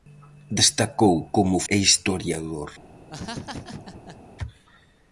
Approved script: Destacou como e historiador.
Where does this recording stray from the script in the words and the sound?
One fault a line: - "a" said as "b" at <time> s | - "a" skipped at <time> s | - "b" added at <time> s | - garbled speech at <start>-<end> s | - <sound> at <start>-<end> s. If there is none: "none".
- laugh at 3.1-4.2 s